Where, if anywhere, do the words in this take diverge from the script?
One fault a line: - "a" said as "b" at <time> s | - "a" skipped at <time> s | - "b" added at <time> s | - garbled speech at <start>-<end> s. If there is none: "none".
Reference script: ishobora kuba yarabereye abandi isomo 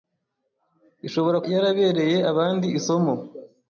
- "kuba" skipped at 1.4 s